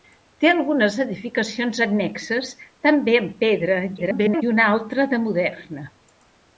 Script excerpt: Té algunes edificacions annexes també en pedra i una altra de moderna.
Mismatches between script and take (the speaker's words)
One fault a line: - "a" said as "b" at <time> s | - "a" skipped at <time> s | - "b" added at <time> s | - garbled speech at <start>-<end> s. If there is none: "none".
- garbled speech at 4.0-4.4 s